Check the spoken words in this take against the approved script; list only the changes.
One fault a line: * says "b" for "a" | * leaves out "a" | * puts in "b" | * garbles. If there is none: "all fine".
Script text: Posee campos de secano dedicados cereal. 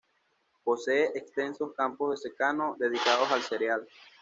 * puts in "extensos"
* puts in "al"